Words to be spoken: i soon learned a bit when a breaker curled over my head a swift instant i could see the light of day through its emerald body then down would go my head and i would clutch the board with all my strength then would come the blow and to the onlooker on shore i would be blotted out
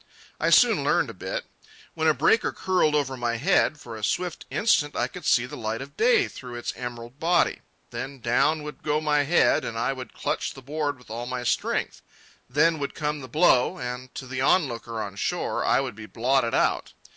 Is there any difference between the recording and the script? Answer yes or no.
yes